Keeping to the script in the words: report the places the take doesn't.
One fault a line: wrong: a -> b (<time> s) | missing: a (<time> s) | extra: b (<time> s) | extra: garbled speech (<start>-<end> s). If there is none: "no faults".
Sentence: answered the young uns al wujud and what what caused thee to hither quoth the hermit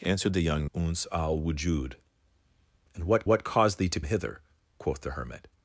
no faults